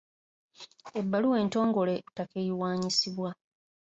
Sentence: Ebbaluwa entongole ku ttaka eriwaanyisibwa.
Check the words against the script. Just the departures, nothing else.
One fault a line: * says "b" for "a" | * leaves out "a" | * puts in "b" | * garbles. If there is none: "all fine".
all fine